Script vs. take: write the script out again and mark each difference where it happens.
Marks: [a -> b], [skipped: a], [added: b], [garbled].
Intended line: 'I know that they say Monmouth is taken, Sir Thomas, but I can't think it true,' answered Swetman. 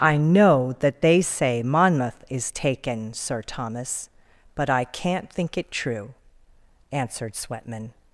'I know that they say Monmouth is taken, Sir Thomas, but I can't think it true,' answered Swetman.